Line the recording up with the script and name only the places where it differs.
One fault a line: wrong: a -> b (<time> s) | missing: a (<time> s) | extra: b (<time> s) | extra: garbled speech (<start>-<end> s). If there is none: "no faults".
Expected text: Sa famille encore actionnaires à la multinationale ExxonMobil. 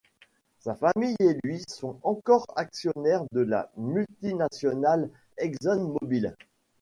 extra: et lui sont (1.2 s)
wrong: à -> de (3.3 s)